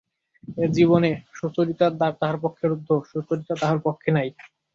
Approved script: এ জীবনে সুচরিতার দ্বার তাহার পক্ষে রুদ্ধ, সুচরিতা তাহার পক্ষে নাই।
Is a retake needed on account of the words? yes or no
no